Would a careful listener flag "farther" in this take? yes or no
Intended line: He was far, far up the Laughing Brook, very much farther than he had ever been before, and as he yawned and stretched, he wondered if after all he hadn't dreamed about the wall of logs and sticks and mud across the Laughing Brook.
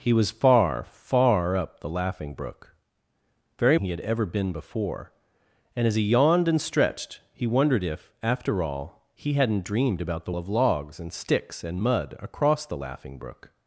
yes